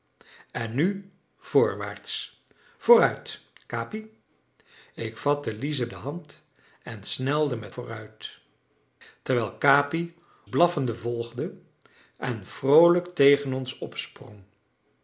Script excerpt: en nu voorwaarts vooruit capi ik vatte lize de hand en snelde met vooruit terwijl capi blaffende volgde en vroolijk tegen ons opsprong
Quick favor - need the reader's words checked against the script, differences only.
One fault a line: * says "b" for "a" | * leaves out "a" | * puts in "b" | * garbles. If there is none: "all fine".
all fine